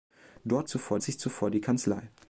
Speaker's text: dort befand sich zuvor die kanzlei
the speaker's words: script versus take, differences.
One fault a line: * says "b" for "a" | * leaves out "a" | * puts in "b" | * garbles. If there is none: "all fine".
* says "zuvor" for "befand"